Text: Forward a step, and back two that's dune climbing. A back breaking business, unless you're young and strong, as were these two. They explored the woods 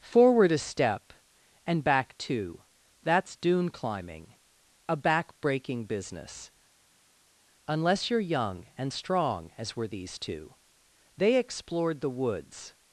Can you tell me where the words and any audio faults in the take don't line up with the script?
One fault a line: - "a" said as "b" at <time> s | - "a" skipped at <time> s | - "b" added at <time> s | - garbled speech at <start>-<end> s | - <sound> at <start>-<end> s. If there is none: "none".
none